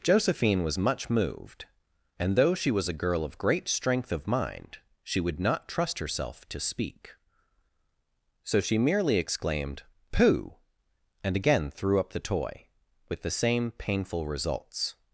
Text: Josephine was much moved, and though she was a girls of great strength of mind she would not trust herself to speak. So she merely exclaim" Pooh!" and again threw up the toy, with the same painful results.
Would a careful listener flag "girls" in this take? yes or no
yes